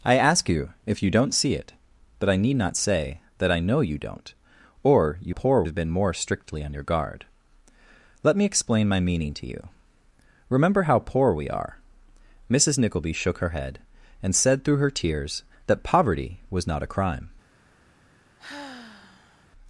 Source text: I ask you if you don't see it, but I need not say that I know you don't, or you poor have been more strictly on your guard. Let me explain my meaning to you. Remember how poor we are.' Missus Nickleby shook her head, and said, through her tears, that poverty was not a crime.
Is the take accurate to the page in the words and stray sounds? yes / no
no